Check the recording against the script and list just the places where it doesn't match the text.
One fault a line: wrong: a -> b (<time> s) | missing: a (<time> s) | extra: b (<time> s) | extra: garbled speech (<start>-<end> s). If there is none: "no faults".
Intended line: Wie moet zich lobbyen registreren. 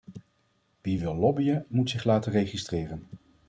extra: wil lobbyen (1.0 s)
wrong: lobbyen -> laten (2.0 s)